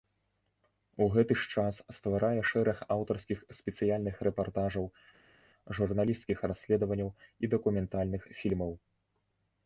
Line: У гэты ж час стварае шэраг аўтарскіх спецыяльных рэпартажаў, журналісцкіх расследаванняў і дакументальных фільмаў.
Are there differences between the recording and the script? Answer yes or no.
no